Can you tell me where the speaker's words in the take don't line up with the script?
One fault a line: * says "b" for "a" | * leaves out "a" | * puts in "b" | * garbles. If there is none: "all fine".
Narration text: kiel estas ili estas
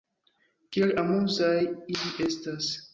* says "amuzaj" for "estas"